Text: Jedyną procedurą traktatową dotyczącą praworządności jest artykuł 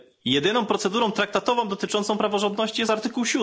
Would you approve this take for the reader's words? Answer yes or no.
yes